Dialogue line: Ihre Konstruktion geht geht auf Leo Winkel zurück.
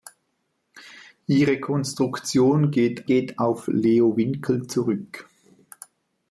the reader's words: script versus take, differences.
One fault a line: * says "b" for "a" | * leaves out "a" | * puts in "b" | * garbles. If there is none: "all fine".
all fine